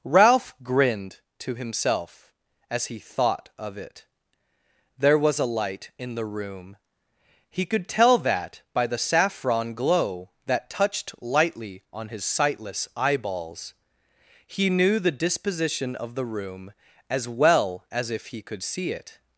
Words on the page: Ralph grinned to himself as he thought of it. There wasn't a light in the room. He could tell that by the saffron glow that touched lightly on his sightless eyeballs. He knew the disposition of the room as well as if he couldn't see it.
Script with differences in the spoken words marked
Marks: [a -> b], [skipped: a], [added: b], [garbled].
Ralph grinned to himself as he thought of it. There [wasn't -> was] a light in the room. He could tell that by the saffron glow that touched lightly on his sightless eyeballs. He knew the disposition of the room as well as if he [couldn't -> could] see it.